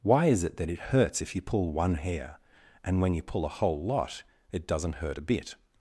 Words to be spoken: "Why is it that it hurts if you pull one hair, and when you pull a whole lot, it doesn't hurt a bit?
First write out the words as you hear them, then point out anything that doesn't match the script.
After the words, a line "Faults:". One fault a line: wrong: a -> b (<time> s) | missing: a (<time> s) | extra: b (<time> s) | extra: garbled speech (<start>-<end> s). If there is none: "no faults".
"Why is it that it hurts if you pull one hair, and when you pull a whole lot, it doesn't hurt a bit?
Faults:
no faults